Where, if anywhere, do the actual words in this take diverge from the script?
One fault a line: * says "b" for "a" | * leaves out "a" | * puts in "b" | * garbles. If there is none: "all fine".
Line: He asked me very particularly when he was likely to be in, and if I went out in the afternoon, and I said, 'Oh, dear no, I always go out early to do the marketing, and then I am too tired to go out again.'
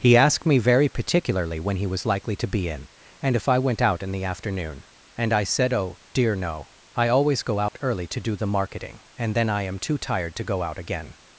all fine